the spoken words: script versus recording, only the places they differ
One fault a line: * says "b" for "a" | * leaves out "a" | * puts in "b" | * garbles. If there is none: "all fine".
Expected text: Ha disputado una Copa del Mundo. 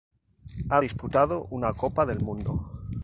all fine